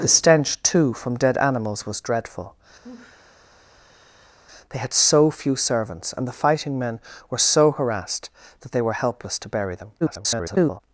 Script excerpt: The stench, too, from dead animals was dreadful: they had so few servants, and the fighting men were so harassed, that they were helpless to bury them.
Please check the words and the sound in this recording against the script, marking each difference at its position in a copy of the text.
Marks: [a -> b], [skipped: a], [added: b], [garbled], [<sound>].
The stench, too, from dead animals was dreadful: [sigh] they had so few servants, and the fighting men were so harassed, that they were helpless to bury them. [garbled]